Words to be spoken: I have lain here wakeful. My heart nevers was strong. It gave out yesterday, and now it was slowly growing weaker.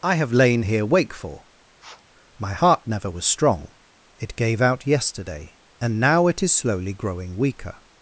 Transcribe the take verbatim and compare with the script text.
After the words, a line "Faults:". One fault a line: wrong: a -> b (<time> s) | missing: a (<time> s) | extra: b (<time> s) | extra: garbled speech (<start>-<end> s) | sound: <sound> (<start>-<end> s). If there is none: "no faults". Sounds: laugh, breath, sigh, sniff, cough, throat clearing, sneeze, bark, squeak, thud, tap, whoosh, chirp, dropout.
I have lain here wakeful. My heart never was strong. It gave out yesterday, and now it is slowly growing weaker.
Faults:
sound: sniff (1.8-2.0 s)
wrong: nevers -> never (2.9 s)
wrong: was -> is (6.4 s)